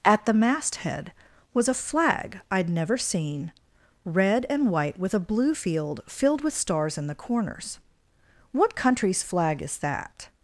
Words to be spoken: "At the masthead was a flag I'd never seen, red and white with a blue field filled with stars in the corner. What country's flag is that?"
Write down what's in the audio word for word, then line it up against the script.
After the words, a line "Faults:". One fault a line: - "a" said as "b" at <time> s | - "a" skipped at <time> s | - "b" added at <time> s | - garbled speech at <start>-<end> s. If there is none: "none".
"At the masthead was a flag I'd never seen, red and white with a blue field filled with stars in the corners. What country's flag is that?"
Faults:
- "corner" said as "corners" at 7.1 s